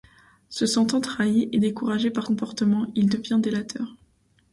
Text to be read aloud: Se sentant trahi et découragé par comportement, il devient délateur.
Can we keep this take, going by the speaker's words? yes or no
yes